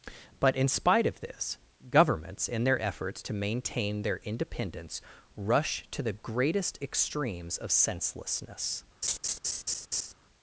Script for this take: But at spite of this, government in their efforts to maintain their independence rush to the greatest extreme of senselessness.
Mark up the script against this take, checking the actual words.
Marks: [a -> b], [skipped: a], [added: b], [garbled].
But [at -> in] spite of this, [government -> governments] in their efforts to maintain their independence rush to the greatest [extreme -> extremes] of senselessness.